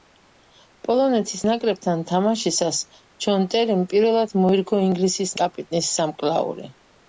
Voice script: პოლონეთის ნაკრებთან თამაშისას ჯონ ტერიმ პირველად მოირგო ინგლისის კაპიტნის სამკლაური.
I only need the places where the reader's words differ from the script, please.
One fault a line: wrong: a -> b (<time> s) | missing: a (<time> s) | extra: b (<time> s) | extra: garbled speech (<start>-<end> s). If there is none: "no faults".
no faults